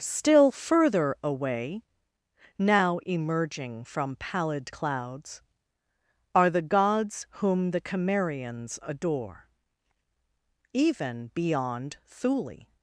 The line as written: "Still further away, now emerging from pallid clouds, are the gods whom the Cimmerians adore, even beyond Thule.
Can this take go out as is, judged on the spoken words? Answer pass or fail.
pass